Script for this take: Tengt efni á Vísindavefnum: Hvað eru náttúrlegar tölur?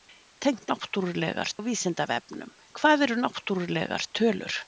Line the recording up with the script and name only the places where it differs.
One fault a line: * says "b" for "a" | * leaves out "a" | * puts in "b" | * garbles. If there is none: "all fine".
* says "náttúrlegar" for "efni"